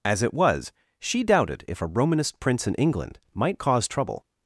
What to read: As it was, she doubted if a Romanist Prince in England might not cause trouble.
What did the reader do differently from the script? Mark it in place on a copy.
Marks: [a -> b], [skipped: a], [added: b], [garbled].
As it was, she doubted if a Romanist Prince in England might [skipped: not] cause trouble.